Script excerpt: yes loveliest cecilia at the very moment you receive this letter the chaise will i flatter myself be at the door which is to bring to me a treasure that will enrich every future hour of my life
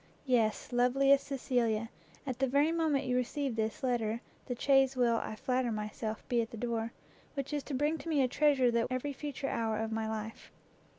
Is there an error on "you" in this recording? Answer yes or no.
no